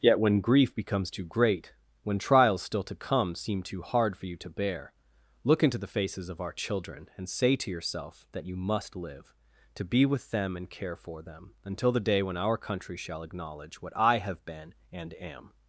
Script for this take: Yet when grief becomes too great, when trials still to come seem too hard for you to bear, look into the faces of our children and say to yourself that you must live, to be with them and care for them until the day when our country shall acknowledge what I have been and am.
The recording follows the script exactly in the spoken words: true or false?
true